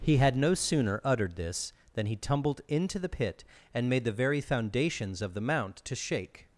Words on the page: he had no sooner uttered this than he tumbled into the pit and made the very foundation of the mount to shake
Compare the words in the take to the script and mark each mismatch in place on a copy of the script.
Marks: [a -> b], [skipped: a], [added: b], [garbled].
he had no sooner uttered this than he tumbled into the pit and made the very [foundation -> foundations] of the mount to shake